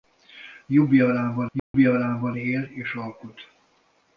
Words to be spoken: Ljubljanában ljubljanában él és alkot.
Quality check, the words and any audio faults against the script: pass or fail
fail